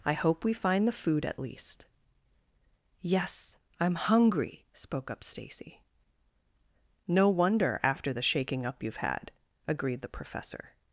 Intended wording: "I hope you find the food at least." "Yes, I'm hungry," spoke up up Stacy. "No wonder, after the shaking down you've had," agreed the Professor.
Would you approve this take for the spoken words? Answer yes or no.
no